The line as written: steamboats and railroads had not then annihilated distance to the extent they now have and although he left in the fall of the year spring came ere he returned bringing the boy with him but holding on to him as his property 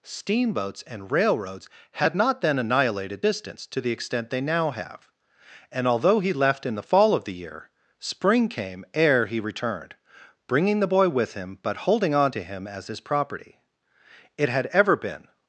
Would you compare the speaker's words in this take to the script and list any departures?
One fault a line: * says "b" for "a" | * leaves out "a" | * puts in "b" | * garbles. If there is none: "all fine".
* puts in "it had ever been"